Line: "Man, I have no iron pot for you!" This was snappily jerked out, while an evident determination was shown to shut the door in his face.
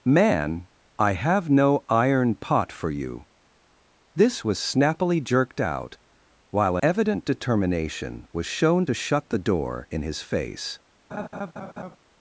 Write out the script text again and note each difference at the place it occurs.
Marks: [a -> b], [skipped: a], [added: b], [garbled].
"Man, I have no iron pot for you!" This was snappily jerked out, while [skipped: an] evident determination was shown to shut the door in his face.